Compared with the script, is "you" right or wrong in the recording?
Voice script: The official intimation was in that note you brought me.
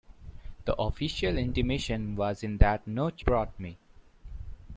wrong